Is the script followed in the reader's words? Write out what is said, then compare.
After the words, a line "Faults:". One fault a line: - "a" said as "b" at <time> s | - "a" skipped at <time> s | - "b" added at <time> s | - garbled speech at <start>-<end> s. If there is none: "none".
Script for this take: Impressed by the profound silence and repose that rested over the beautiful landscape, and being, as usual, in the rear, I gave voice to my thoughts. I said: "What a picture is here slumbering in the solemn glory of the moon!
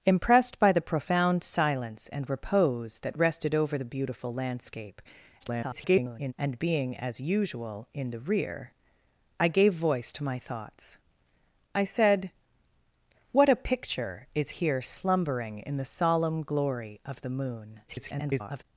Impressed by the profound silence and repose that rested over the beautiful landscape, [garbled] and being, as usual, in the rear, I gave voice to my thoughts. I said: "What a picture is here slumbering in the solemn glory of the moon! [garbled]
Faults:
- garbled speech at 5.4-6.3 s
- garbled speech at 17.9-18.6 s